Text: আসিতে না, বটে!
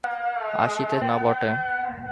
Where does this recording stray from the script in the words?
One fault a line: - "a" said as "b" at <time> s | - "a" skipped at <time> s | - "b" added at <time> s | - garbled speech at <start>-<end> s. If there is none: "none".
none